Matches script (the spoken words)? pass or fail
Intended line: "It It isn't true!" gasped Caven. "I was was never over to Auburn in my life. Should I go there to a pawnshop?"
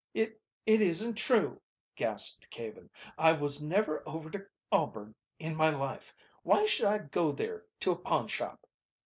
fail